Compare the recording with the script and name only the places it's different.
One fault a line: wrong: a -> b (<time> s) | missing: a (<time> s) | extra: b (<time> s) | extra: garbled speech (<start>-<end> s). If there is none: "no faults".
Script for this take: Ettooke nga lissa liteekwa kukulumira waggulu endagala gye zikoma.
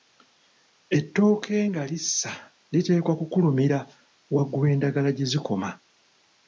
no faults